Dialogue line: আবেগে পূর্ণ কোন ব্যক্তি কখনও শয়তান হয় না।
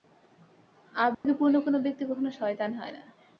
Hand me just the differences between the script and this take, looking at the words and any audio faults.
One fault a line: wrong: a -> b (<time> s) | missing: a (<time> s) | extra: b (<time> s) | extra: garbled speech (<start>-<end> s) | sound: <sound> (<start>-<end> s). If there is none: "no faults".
sound: dropout (1.1-1.2 s)